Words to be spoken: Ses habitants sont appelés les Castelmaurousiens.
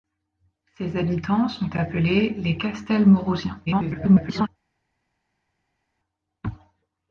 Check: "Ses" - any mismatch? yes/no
no